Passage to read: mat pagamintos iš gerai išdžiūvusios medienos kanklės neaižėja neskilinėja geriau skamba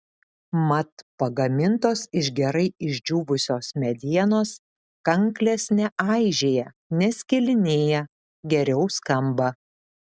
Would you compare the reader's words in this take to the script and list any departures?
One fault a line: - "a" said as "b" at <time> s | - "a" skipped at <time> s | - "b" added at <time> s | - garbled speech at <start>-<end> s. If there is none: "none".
none